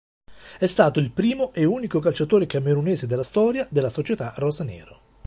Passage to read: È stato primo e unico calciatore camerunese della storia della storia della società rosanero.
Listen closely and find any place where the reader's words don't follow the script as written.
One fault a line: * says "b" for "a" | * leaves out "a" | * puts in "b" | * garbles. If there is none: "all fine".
* puts in "il"
* leaves out "storia della"